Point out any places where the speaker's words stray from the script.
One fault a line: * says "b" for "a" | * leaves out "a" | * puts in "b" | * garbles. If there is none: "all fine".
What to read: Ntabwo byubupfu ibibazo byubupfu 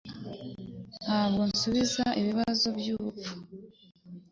* says "nsubiza" for "byubupfu"